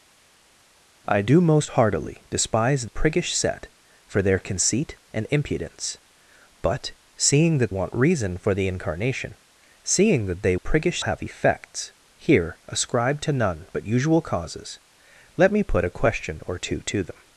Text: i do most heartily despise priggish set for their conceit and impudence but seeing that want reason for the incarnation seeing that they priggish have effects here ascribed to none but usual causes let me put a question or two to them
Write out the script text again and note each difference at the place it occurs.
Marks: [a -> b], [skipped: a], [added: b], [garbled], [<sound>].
i do most heartily despise priggish set for their conceit and impudence but seeing that want reason for the incarnation seeing that they priggish have effects here ascribed to none but usual causes let me put a question or two to them